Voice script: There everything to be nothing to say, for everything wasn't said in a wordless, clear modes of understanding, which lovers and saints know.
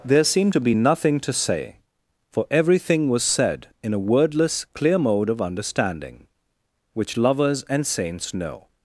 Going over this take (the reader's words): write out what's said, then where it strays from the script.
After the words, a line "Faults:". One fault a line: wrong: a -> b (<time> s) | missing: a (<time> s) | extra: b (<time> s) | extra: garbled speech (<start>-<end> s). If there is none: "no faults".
There seemed to be nothing to say, for everything was said in a wordless, clear mode of understanding, which lovers and saints know.
Faults:
wrong: everything -> seemed (0.2 s)
wrong: wasn't -> was (3.1 s)
wrong: modes -> mode (5.0 s)